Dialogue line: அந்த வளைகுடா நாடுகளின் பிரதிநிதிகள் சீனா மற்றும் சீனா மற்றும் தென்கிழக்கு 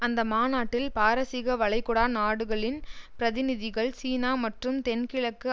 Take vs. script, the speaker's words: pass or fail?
fail